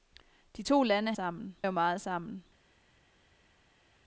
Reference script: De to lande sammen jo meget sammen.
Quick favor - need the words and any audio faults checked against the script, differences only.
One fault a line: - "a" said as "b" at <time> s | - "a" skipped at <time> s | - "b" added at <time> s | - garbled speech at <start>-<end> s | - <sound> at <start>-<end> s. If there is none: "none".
none